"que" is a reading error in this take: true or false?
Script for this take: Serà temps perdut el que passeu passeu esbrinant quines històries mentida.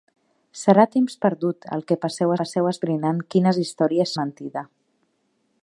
false